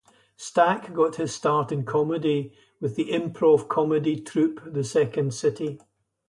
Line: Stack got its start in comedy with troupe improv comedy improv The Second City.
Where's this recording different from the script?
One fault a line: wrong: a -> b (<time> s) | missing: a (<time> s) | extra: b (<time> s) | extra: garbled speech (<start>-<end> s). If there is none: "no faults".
wrong: its -> his (1.2 s)
wrong: troupe -> the (3.0 s)
wrong: improv -> troupe (4.2 s)